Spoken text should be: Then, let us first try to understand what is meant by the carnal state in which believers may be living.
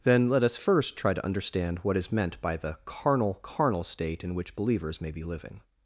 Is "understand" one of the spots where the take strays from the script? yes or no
no